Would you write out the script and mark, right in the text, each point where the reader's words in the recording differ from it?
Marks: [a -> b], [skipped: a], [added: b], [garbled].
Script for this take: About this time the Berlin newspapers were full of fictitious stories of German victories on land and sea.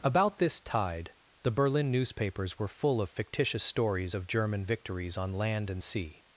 About this [time -> tide] the Berlin newspapers were full of fictitious stories of German victories on land and sea.